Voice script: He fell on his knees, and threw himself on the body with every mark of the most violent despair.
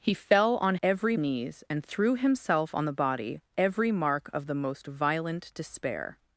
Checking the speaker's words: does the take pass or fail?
fail